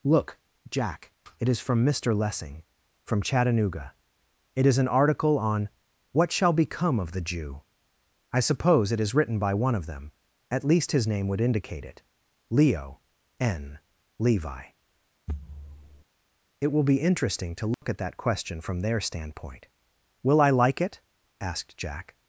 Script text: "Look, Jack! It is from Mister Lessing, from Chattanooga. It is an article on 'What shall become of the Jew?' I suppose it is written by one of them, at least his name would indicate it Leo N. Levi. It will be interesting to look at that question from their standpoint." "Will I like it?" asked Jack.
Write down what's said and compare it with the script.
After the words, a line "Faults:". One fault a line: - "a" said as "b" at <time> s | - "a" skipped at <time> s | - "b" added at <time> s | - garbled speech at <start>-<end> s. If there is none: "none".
"Look, Jack! It is from Mister Lessing, from Chattanooga. It is an article on 'What shall become of the Jew?' I suppose it is written by one of them, at least his name would indicate it Leo N. Levi. It will be interesting to look at that question from their standpoint." "Will I like it?" asked Jack.
Faults:
none